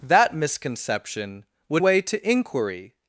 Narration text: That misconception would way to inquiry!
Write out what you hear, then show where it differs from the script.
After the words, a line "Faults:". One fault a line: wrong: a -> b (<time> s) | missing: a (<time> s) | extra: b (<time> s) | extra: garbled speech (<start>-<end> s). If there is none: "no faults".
That misconception would way to inquiry!
Faults:
no faults